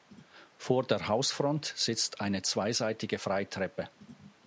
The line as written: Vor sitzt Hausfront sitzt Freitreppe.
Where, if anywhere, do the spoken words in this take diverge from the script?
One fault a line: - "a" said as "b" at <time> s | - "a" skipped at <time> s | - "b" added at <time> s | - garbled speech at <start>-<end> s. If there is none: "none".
- "sitzt" said as "der" at 0.8 s
- "eine zweiseitige" added at 2.2 s